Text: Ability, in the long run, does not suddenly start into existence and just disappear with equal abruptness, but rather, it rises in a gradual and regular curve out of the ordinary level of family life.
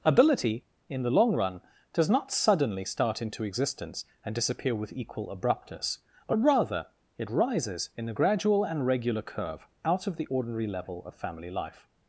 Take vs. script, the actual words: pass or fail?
fail